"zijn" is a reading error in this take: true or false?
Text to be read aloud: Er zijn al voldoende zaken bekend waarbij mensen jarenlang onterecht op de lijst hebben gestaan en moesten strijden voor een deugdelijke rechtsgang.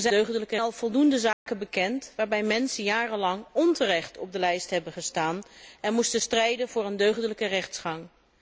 true